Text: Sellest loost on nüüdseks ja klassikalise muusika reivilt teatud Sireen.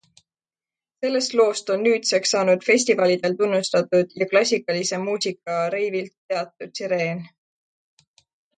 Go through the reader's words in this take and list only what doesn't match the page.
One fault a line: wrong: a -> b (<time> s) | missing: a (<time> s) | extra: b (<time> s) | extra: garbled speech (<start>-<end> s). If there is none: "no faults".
extra: saanud festivalidel tunnustatud (2.4 s)